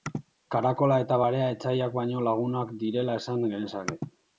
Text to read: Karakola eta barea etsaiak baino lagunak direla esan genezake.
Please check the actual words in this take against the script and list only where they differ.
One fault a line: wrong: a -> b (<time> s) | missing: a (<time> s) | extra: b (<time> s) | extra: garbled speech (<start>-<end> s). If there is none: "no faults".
no faults